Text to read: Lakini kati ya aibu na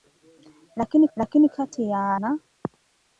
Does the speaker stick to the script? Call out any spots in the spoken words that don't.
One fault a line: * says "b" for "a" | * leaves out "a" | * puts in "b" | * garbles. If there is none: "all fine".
* puts in "lakini"
* leaves out "aibu"